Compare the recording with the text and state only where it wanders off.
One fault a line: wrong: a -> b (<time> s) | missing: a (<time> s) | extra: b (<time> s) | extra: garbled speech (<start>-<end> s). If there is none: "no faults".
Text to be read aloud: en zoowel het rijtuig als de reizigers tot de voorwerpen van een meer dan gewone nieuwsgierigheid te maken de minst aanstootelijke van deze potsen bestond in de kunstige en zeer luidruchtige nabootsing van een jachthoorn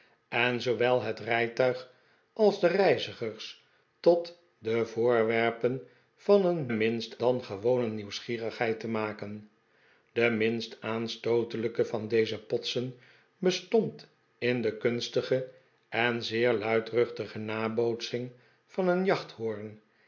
wrong: meer -> minst (6.7 s)